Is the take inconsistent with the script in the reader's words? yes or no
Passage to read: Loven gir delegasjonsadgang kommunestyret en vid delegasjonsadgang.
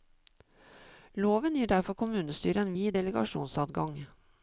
yes